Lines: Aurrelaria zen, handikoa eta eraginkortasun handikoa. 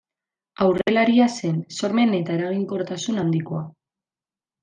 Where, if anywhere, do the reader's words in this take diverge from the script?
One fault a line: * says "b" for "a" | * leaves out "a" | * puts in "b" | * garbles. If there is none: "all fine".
* says "sormen" for "handikoa"